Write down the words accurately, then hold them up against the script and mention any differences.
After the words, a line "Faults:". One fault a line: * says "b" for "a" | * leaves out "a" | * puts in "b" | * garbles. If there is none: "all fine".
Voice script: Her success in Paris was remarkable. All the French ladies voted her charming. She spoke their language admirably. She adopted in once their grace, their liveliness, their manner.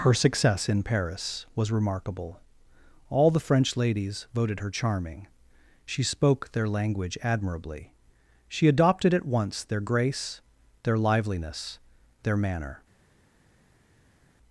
Her success in Paris was remarkable. All the French ladies voted her charming. She spoke their language admirably. She adopted at once their grace, their liveliness, their manner.
Faults:
* says "at" for "in"